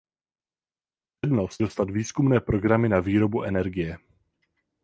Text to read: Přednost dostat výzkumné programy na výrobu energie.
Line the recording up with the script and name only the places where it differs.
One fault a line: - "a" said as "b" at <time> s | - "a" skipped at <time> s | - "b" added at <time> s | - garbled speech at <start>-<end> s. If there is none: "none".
none